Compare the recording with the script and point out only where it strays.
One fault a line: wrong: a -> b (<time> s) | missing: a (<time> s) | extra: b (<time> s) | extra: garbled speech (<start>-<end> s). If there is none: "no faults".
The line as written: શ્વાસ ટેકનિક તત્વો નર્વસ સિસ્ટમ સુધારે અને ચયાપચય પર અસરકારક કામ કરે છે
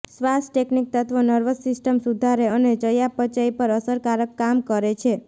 no faults